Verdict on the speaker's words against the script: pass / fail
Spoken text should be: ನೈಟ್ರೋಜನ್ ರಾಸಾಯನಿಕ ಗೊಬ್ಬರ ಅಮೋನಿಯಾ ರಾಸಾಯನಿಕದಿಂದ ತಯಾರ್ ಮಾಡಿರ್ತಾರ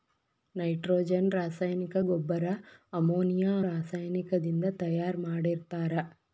pass